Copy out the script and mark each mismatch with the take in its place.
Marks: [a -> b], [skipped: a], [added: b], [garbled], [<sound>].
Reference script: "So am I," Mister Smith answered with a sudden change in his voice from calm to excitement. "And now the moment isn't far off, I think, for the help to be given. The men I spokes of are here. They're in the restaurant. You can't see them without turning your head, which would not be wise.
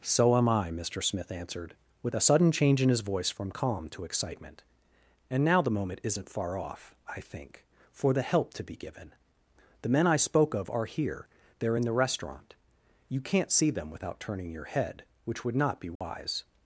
"So am I," Mister Smith answered with a sudden change in his voice from calm to excitement. "And now the moment isn't far off, I think, for the help to be given. The men I [spokes -> spoke] of are here. They're in the restaurant. You can't see them without turning your head, which would not be wise. [dropout]